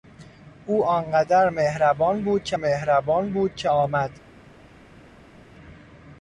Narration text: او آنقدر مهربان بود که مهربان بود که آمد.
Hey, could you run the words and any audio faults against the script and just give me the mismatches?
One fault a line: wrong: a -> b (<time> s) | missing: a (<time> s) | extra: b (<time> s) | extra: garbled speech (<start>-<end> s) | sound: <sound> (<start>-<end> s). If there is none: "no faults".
no faults